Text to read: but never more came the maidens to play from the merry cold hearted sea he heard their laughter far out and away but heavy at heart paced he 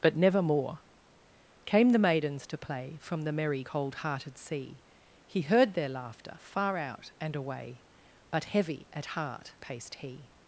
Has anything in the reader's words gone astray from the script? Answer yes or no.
no